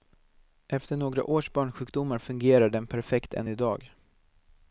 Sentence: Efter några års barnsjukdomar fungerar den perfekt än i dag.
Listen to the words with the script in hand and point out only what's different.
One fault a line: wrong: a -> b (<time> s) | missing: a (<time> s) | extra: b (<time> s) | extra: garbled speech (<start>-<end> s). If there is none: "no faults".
no faults